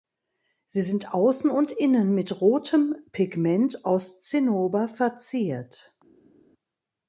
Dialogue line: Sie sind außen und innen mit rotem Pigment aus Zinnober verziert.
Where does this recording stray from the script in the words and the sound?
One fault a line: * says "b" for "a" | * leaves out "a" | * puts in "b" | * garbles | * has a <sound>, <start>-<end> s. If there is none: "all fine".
all fine